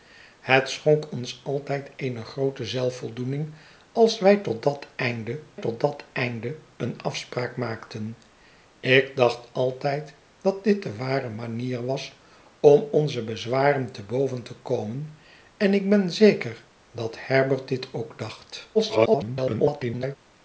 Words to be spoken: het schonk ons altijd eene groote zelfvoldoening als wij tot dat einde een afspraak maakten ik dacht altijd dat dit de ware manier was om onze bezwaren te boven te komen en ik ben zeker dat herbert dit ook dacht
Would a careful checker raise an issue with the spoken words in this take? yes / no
yes